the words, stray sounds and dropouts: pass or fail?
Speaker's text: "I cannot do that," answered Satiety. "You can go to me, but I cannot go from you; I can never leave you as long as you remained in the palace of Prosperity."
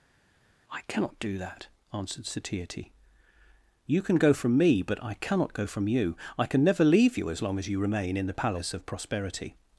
fail